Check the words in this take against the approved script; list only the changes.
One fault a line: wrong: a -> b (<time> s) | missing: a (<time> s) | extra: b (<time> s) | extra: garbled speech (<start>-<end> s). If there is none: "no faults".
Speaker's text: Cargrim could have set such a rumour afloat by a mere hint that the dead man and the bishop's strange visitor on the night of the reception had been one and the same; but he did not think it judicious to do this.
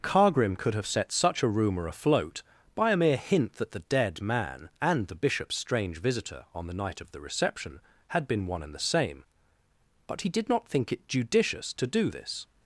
no faults